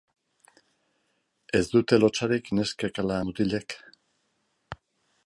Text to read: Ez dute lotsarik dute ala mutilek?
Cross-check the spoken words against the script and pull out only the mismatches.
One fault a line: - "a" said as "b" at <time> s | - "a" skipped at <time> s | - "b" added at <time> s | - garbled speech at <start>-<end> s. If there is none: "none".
- "dute" said as "neskek" at 2.6 s